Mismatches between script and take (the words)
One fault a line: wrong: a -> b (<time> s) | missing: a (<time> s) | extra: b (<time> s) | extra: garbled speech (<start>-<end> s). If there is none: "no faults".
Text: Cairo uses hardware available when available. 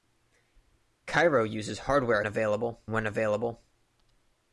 no faults